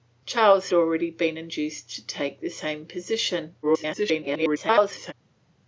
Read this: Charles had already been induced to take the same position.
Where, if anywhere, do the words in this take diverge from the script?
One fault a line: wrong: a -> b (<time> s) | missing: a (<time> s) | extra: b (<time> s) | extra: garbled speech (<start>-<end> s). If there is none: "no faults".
missing: had (0.7 s)
extra: garbled speech (3.6-5.1 s)